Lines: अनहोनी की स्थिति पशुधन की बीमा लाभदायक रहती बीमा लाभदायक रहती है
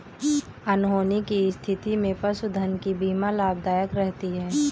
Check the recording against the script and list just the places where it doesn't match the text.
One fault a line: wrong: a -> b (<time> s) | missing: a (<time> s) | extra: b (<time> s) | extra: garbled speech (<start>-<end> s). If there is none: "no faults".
extra: में (1.9 s)
missing: बीमा लाभदायक रहती (4.3 s)